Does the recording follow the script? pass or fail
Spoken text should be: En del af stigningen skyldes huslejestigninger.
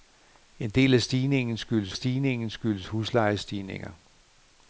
fail